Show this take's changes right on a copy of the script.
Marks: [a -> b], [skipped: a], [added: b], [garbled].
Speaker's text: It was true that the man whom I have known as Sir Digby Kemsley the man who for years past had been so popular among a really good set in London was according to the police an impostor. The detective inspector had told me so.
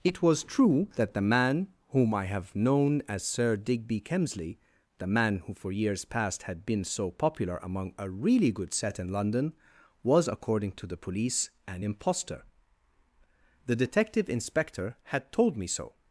It was true that the man whom I have known as Sir Digby Kemsley the man who for years past had been so popular among a really good set in London was according to the police an impostor. The detective inspector had told me so.